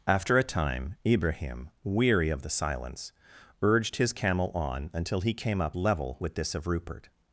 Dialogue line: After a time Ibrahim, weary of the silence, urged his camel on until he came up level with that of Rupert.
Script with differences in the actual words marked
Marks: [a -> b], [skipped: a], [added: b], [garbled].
After a time Ibrahim, weary of the silence, urged his camel on until he came up level with [that -> this] of Rupert.